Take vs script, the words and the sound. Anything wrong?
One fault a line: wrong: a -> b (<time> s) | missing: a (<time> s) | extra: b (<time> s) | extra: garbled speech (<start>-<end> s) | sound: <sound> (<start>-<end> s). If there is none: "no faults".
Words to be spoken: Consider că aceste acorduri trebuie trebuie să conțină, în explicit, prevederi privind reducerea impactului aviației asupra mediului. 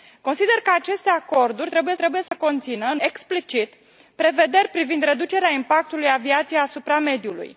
sound: dropout (2.3-2.3 s)